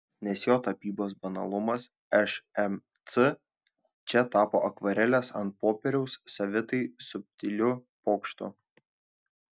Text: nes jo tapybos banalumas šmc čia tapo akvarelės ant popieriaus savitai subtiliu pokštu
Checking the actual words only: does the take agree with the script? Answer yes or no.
yes